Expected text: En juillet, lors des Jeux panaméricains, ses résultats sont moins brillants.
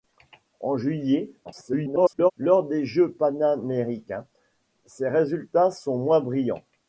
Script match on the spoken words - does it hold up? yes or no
no